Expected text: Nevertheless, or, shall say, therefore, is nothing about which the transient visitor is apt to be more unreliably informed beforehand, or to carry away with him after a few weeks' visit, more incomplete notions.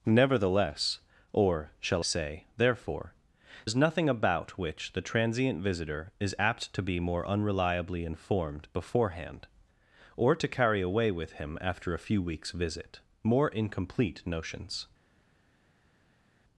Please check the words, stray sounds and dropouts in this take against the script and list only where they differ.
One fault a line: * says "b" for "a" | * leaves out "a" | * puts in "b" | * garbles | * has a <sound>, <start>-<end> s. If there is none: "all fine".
all fine